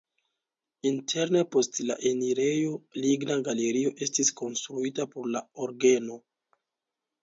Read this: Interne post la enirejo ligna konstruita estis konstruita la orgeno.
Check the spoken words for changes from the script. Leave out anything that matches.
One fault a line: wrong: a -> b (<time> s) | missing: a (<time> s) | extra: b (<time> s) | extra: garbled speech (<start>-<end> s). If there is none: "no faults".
wrong: konstruita -> galerio (3.5 s)
extra: por (5.2 s)